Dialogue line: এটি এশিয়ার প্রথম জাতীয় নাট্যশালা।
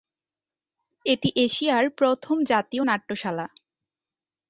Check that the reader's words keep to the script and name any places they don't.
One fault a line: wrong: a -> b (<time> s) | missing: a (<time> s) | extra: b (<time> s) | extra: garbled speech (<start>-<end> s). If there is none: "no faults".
no faults